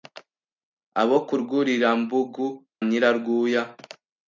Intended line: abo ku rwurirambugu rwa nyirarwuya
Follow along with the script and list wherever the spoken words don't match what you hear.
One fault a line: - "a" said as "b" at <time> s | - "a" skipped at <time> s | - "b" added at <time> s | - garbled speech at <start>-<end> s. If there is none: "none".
- "rwa" skipped at 2.5 s